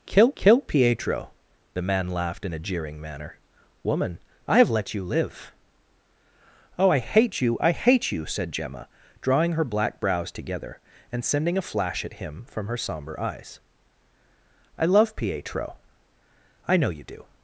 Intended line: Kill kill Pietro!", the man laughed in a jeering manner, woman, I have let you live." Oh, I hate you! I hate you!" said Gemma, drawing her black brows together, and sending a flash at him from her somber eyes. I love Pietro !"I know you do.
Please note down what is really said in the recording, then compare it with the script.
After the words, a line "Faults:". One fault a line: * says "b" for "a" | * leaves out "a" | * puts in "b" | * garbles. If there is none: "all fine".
Kill kill Pietro!", the man laughed in a jeering manner, woman, I have let you live." Oh, I hate you! I hate you!" said Gemma, drawing her black brows together, and sending a flash at him from her somber eyes. I love Pietro !"I know you do.
Faults:
all fine